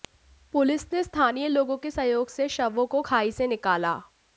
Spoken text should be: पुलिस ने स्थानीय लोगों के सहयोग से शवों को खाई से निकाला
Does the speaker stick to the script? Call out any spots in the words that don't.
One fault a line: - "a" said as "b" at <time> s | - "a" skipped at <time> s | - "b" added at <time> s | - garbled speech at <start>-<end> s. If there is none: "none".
none